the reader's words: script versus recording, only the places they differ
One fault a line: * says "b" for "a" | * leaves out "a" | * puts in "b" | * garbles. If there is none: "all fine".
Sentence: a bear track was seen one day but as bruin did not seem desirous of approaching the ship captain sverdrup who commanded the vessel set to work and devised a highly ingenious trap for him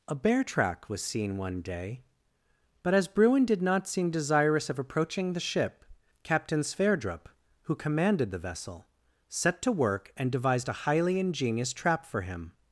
all fine